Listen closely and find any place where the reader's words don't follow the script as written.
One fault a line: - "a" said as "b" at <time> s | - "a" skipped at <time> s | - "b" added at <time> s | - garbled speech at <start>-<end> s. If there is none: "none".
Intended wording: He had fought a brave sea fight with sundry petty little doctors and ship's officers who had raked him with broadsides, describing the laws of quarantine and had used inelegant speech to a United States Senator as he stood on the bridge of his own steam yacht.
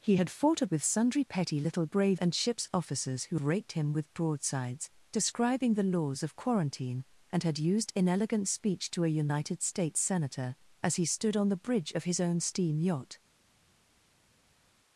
- "brave sea fight" skipped at 0.7 s
- "doctors" said as "brave" at 1.8 s
- "had" skipped at 3.4 s